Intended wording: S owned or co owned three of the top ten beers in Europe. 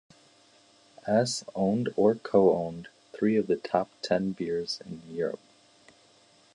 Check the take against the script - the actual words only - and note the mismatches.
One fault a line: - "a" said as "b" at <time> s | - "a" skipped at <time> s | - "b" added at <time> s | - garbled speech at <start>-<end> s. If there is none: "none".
none